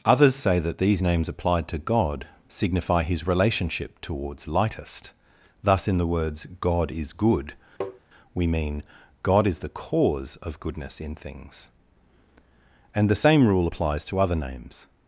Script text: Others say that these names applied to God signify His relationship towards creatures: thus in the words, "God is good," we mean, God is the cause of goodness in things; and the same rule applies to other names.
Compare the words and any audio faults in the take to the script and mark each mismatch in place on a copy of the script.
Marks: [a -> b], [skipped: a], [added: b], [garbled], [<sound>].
Others say that these names applied to God signify His relationship towards [creatures: -> lightest] thus in the words, "God is good," [tap] we mean, God is the cause of goodness in things; and the same rule applies to other names.